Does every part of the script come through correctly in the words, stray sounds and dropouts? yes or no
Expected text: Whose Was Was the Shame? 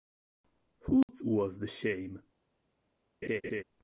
no